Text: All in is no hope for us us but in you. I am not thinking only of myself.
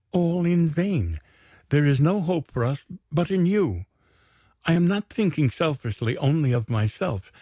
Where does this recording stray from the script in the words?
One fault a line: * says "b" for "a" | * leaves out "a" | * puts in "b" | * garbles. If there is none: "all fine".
* puts in "vain There"
* leaves out "us"
* puts in "selfishly"